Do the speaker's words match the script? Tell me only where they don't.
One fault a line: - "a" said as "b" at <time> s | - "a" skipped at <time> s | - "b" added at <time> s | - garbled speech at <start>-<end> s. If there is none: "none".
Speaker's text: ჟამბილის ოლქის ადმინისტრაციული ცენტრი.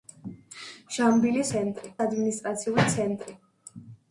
- "ოლქის" said as "ცენტრი" at 1.5 s